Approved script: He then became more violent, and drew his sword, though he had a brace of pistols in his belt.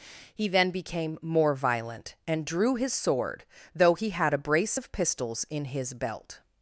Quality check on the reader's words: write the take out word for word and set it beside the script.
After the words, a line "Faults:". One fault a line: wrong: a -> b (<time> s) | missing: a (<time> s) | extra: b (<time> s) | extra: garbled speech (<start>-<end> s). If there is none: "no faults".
He then became more violent, and drew his sword, though he had a brace of pistols in his belt.
Faults:
no faults